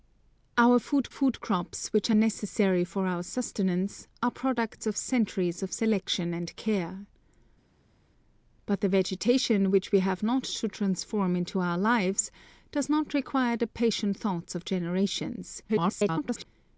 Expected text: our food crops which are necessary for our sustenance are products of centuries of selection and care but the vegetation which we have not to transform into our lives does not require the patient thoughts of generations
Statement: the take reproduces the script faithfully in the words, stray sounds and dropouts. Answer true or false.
false